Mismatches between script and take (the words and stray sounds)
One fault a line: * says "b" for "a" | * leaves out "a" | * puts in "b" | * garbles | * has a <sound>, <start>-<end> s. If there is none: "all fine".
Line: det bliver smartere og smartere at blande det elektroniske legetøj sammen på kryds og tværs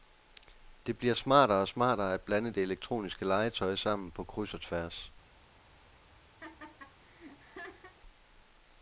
* has a laugh, 6.4-7.9 s